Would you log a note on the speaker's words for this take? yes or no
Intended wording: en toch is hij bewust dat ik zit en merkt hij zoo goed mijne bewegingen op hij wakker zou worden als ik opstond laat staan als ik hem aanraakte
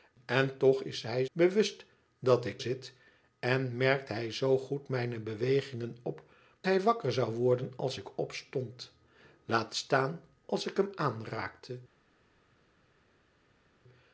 no